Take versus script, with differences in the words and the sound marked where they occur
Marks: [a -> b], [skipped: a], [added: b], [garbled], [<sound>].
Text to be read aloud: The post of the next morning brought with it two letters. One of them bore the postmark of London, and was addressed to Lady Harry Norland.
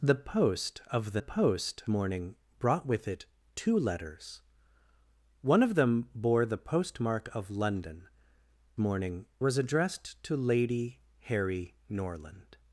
The post of the [next -> post] morning brought with it two letters. One of them bore the postmark of London, [and -> morning] was addressed to Lady Harry Norland.